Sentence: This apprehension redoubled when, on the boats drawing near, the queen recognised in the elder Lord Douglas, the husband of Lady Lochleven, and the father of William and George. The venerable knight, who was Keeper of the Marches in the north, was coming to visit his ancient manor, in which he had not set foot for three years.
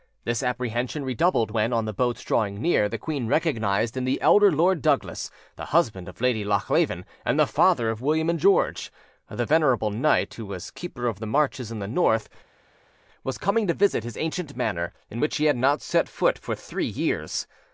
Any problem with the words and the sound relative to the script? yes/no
no